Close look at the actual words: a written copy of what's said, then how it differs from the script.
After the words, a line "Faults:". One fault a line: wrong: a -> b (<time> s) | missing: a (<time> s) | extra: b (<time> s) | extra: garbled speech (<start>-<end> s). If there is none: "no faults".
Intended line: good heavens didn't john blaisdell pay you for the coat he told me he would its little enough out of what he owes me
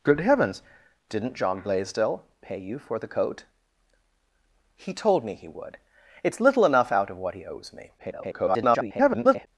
good heavens didn't john blaisdell pay you for the coat he told me he would its little enough out of what he owes me [garbled]
Faults:
extra: garbled speech (8.0-9.5 s)